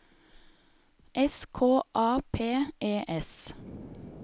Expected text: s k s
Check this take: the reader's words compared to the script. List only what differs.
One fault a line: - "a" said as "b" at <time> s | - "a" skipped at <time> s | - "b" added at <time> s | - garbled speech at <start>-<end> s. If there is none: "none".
- "a p e" added at 1.9 s